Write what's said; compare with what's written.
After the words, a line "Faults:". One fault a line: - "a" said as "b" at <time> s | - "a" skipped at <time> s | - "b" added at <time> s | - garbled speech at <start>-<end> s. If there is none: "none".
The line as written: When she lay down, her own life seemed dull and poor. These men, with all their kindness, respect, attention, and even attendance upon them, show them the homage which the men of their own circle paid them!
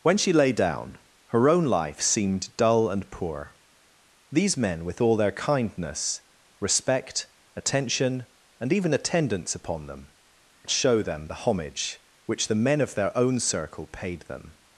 When she lay down, her own life seemed dull and poor. These men, with all their kindness, respect, attention, and even attendance upon them, show them the homage which the men of their own circle paid them!
Faults:
none